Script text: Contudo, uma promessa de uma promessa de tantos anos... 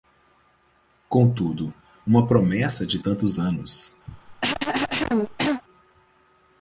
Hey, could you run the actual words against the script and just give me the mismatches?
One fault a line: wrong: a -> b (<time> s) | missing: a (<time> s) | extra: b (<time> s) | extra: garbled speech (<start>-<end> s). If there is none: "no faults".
missing: uma promessa de (3.0 s)